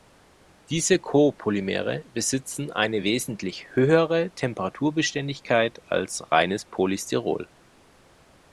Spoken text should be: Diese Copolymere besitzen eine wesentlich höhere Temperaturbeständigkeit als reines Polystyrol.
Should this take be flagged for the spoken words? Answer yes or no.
no